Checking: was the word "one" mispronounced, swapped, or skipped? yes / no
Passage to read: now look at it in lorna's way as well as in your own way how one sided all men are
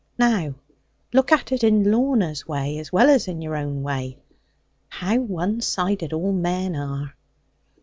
no